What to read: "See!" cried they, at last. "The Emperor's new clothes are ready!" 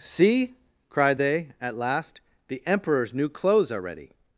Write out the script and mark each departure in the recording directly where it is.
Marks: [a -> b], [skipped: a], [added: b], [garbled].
"See!" cried they, at last. "The Emperor's new clothes are ready!"